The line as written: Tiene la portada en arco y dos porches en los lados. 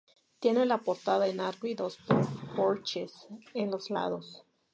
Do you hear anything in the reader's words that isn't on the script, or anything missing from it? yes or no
no